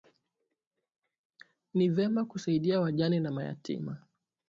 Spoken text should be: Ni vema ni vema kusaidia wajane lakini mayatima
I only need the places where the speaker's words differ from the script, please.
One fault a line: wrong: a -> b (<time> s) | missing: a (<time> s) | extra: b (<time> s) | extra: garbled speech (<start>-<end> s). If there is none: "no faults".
missing: ni vema (2.2 s)
wrong: lakini -> na (3.2 s)